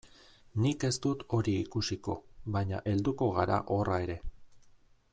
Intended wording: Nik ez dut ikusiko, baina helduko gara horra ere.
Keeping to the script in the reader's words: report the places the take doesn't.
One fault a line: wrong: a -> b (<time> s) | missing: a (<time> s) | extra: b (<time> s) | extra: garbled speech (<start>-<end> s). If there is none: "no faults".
extra: hori (1.4 s)